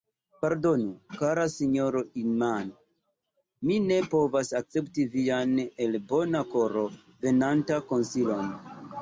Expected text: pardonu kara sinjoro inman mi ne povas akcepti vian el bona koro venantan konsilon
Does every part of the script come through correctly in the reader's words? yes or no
yes